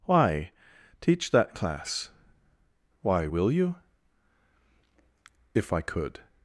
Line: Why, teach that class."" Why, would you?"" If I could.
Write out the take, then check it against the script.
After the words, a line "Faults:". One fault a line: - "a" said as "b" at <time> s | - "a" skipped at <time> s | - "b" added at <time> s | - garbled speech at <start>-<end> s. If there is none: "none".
Why, teach that class."" Why, will you?"" If I could.
Faults:
- "would" said as "will" at 3.2 s